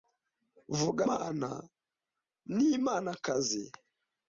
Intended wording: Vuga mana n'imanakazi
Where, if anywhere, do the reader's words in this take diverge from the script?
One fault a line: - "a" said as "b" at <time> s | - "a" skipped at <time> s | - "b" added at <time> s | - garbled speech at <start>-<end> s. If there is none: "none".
none